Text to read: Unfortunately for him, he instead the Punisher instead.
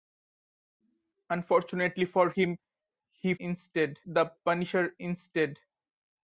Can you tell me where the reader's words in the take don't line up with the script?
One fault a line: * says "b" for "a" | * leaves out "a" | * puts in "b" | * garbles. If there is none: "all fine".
all fine